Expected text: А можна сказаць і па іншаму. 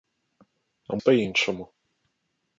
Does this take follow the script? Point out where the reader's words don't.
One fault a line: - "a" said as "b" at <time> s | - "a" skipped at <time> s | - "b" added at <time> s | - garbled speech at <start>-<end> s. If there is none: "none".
- "можна сказаць" skipped at 1.0 s